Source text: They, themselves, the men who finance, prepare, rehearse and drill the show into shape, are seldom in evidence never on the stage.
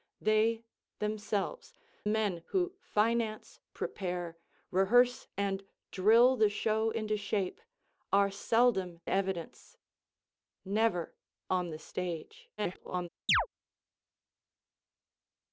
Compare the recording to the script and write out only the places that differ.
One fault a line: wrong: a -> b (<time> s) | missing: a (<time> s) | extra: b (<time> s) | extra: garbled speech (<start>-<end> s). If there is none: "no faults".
missing: the (1.8 s)
missing: in (9.0 s)
extra: garbled speech (12.6-13.1 s)